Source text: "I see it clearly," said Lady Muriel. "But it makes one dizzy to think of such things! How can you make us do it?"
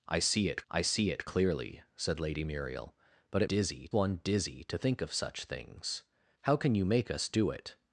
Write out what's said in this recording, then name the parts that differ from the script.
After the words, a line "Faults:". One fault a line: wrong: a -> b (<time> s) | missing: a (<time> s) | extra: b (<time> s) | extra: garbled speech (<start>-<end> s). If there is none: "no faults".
"I see it I see it clearly," said Lady Muriel. "But it dizzy one dizzy to think of such things! How can you make us do it?"
Faults:
extra: I see it (0.7 s)
wrong: makes -> dizzy (3.5 s)